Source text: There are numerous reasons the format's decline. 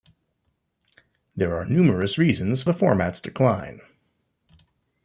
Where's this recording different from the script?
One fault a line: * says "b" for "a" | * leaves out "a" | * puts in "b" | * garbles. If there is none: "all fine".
all fine